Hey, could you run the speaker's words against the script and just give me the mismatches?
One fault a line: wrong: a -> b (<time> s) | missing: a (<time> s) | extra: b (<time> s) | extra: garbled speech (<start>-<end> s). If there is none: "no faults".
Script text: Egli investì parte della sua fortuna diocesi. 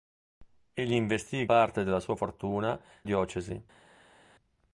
no faults